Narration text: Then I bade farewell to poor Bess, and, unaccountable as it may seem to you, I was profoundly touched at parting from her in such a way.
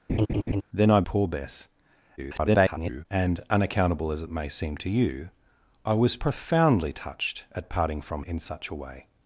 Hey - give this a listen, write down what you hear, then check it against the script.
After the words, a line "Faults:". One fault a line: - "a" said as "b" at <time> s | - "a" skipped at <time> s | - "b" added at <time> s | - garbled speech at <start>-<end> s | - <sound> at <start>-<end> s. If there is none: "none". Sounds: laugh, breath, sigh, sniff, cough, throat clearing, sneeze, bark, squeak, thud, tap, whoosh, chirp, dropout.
Then I poor Bess, [garbled] and, unaccountable as it may seem to you, I was profoundly touched at parting from in such a way.
Faults:
- laugh at 0.1-0.6 s
- "bade farewell to" skipped at 1.0 s
- garbled speech at 2.2-3.1 s
- "her" skipped at 8.2 s